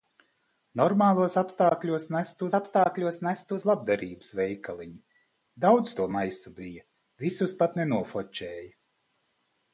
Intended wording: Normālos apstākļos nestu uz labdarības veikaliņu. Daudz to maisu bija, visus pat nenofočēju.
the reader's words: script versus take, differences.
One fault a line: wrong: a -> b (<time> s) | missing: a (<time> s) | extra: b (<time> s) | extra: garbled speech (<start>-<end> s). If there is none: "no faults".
extra: apstākļos nestu (2.6 s)